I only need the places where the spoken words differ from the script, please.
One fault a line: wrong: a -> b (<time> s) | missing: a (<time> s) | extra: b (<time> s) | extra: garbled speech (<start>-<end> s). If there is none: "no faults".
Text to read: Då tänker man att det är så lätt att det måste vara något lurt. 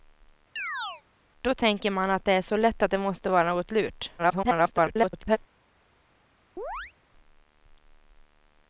extra: garbled speech (4.2-5.4 s)